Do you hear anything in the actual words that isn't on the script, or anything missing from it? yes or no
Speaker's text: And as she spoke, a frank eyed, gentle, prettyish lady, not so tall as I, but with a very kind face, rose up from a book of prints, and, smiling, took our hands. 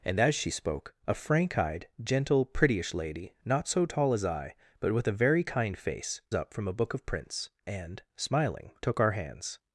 yes